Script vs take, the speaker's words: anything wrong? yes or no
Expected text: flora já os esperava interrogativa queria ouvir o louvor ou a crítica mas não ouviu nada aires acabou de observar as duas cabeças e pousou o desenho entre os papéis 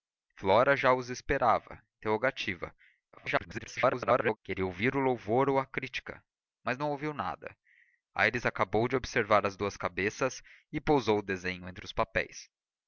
yes